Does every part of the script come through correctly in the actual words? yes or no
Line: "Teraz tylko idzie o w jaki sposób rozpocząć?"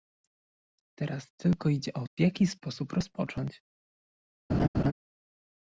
yes